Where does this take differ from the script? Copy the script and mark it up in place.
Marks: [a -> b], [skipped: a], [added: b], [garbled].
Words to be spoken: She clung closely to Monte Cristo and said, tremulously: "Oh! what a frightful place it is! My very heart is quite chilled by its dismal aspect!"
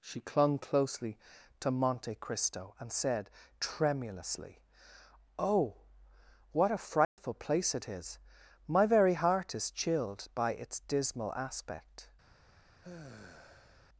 She clung closely to Monte Cristo and said, tremulously: "Oh! what a frightful place it is! My very heart is [skipped: quite] chilled by its dismal aspect!"